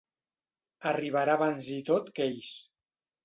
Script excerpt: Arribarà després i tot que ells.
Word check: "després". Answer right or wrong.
wrong